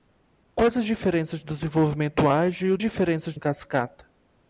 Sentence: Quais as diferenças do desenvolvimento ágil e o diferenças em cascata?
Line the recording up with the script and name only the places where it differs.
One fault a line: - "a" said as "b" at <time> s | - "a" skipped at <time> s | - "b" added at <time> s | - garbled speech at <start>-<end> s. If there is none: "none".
none